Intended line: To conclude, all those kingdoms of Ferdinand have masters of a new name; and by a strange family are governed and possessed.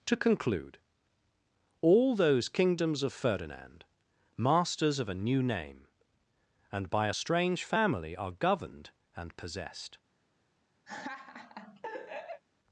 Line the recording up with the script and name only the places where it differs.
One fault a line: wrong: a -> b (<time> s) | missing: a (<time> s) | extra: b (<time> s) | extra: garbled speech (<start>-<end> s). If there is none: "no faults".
missing: have (3.9 s)